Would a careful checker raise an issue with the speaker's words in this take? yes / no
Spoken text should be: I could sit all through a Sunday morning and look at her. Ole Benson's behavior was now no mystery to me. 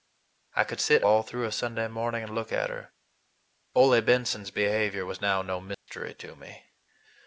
no